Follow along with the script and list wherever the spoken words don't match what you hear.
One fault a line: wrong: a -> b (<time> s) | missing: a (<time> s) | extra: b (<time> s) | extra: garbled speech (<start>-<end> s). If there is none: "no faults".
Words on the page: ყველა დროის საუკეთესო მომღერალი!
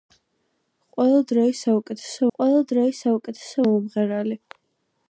extra: ყველა დროის საუკეთესო (2.4 s)